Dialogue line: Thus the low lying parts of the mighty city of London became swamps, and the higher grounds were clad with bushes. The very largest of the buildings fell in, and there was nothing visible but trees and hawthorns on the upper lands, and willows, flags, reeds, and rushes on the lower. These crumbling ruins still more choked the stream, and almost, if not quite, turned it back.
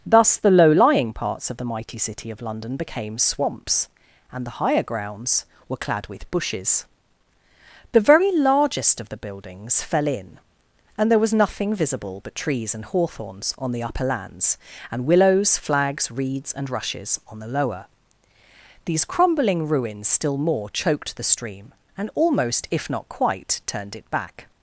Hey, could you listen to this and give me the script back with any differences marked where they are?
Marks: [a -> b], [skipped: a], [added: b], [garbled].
Thus the low lying parts of the mighty city of London became swamps, and the higher grounds were clad with bushes. The very largest of the buildings fell in, and there was nothing visible but trees and hawthorns on the upper lands, and willows, flags, reeds, and rushes on the lower. These crumbling ruins still more choked the stream, and almost, if not quite, turned it back.